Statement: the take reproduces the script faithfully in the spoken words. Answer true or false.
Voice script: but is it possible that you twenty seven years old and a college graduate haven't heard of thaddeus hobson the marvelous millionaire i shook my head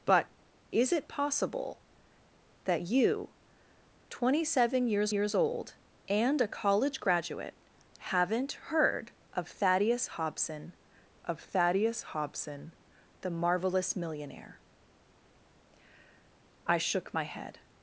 false